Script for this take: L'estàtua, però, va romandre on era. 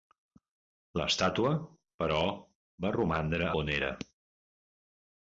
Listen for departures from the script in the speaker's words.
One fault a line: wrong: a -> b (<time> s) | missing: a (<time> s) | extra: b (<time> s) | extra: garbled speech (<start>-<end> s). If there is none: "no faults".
no faults